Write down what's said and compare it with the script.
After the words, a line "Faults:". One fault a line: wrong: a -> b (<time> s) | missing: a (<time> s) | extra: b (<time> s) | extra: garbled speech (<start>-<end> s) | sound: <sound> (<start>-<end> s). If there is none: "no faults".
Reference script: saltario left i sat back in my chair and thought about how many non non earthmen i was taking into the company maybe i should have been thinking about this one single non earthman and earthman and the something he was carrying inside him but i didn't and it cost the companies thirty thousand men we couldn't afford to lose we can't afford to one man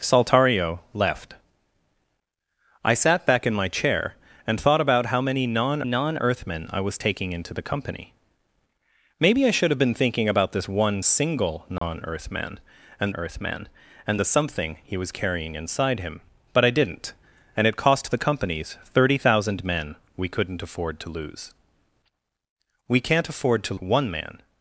saltario left i sat back in my chair and thought about how many non non earthmen i was taking into the company maybe i should have been thinking about this one single non earthman and earthman and the something he was carrying inside him but i didn't and it cost the companies thirty thousand men we couldn't afford to lose we can't afford to one man
Faults:
sound: dropout (11.8-11.8 s)